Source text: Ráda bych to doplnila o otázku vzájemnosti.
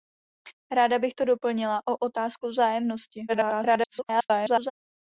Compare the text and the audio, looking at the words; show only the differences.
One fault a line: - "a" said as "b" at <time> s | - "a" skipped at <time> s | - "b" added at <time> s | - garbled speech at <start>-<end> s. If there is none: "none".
- garbled speech at 3.3-4.7 s